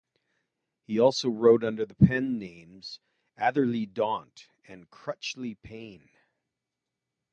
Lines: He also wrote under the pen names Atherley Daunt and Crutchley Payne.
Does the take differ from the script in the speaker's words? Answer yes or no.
no